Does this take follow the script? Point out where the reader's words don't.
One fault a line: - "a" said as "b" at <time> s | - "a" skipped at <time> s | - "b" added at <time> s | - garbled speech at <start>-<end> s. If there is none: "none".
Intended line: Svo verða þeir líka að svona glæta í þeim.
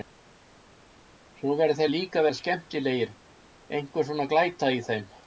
- "vera skemmtilegir einhver" added at 2.2 s